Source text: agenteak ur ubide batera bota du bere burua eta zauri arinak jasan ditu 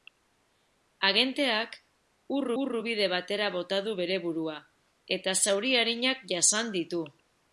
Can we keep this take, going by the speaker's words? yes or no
no